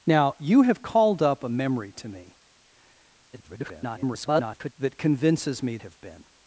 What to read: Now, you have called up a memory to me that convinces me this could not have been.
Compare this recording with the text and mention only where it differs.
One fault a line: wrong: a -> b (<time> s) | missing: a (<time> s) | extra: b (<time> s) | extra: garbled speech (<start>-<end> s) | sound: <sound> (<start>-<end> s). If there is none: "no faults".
extra: garbled speech (3.3-4.7 s)
missing: this could not (5.8 s)